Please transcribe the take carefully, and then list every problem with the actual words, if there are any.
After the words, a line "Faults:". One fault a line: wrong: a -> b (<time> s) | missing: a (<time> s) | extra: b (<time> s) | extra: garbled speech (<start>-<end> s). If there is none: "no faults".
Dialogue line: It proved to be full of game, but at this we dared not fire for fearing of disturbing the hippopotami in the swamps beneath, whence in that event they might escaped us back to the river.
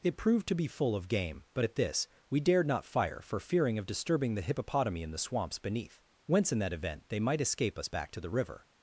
It proved to be full of game, but at this we dared not fire for fearing of disturbing the hippopotami in the swamps beneath, whence in that event they might escape us back to the river.
Faults:
wrong: escaped -> escape (7.4 s)